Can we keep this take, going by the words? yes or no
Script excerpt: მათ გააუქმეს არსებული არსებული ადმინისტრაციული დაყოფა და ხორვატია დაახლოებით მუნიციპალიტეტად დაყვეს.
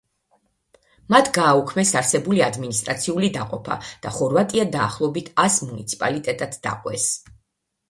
no